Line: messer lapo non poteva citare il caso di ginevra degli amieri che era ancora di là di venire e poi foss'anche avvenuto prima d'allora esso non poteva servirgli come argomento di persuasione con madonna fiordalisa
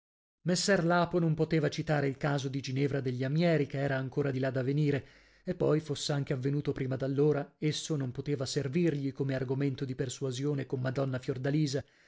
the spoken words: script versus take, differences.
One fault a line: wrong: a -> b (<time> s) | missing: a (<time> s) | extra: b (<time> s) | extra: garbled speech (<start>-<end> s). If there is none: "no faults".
wrong: di -> da (4.5 s)